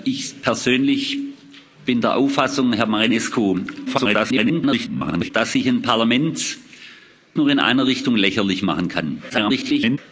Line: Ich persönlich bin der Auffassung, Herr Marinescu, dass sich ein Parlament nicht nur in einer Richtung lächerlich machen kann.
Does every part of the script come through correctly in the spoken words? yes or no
no